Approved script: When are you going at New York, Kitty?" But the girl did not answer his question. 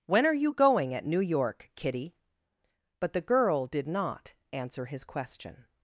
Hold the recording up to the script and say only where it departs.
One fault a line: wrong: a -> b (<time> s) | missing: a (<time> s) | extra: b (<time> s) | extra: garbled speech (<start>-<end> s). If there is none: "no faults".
no faults